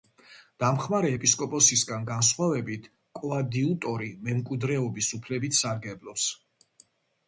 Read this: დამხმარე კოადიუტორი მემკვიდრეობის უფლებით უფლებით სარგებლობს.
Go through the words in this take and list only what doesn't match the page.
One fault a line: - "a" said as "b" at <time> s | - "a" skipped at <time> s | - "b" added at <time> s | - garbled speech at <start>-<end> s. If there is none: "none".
- "ეპისკოპოსისგან განსხვავებით" added at 1.2 s
- "უფლებით" skipped at 5.6 s